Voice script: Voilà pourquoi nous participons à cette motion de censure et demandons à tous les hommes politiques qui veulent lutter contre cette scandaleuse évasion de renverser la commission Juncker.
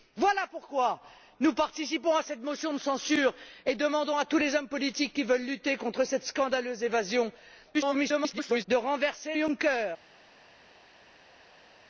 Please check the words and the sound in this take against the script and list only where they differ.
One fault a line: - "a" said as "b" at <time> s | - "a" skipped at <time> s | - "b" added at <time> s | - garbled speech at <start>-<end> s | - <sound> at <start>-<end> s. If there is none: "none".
- garbled speech at 7.7-8.7 s
- "la commission" skipped at 9.3 s